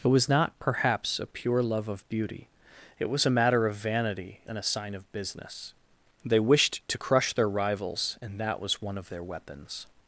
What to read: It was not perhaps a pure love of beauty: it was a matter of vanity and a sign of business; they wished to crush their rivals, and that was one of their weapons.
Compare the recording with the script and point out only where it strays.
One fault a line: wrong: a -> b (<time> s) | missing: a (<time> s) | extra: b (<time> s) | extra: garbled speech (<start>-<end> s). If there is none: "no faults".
no faults